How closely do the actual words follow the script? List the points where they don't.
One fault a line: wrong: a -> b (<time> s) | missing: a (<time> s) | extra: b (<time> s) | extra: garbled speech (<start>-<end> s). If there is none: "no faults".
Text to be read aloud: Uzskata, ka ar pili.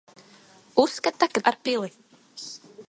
no faults